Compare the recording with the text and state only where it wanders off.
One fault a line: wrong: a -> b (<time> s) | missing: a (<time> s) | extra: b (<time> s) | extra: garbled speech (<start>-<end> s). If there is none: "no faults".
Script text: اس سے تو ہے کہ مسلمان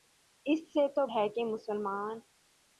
no faults